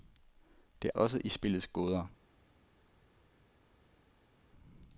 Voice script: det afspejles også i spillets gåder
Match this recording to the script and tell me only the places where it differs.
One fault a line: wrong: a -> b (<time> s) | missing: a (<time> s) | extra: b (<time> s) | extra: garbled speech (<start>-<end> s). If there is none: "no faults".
missing: afspejles (0.9 s)